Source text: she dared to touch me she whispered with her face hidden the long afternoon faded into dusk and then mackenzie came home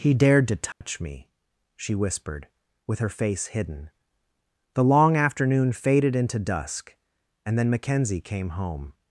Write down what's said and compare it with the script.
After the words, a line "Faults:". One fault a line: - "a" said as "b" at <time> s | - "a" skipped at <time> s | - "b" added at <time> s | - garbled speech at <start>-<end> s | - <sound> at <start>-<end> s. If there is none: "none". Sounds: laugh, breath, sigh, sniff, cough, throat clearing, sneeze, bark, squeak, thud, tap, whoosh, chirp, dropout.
he dared to touch me she whispered with her face hidden the long afternoon faded into dusk and then mackenzie came home
Faults:
- "she" said as "he" at 0.0 s
- dropout at 0.7-0.8 s